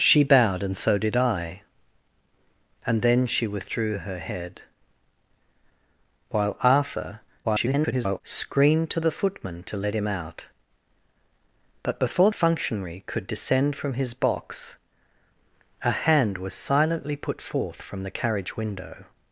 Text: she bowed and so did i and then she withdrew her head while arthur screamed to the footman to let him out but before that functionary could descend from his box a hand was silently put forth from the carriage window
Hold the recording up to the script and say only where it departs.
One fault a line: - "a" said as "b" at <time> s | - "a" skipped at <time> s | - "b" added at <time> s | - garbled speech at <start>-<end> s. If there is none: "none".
- garbled speech at 7.4-8.2 s
- "that" skipped at 12.3 s